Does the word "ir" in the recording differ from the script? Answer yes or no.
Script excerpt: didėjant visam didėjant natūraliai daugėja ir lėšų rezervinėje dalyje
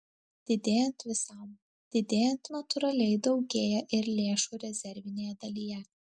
no